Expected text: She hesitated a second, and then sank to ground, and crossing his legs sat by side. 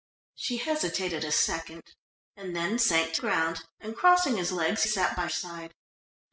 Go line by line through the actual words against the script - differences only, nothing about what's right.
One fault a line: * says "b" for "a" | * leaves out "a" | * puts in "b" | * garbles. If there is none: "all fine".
all fine